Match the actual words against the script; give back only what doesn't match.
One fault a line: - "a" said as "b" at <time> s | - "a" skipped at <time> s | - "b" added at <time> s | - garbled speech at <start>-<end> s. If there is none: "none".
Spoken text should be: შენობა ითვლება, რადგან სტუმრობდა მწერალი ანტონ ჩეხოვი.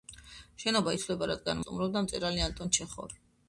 none